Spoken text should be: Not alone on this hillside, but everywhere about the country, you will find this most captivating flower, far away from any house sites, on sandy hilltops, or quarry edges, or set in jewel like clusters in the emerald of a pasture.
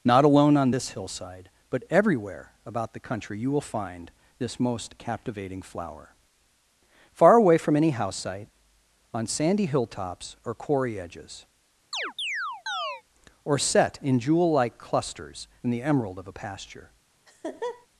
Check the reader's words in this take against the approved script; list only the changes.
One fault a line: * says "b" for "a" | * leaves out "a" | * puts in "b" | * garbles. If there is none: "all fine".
* says "site" for "sites"